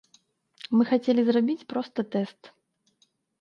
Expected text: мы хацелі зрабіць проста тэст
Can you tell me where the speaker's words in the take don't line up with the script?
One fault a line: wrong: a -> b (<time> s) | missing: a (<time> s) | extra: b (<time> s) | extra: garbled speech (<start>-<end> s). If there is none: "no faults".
no faults